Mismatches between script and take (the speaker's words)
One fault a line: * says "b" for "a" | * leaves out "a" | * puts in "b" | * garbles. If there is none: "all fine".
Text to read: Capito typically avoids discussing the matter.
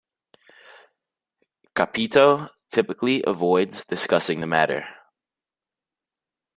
all fine